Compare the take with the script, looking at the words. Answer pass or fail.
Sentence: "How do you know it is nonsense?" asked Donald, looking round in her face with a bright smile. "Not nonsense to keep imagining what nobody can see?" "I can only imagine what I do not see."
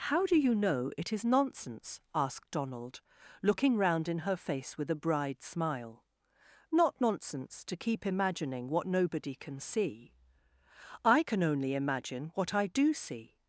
fail